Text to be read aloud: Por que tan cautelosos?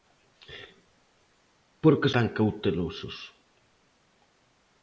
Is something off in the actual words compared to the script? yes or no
no